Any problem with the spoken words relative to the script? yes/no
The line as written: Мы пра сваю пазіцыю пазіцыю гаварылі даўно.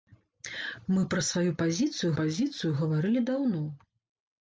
no